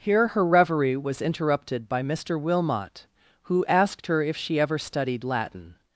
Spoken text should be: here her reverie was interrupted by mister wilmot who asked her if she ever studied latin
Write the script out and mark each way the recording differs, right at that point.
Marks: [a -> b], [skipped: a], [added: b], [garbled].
here her reverie was interrupted by mister wilmot who asked her if she ever studied latin